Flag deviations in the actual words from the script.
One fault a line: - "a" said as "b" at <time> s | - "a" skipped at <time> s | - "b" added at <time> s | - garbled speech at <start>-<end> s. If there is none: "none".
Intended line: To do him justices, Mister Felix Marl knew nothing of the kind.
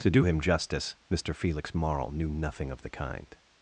- "justices" said as "justice" at 0.4 s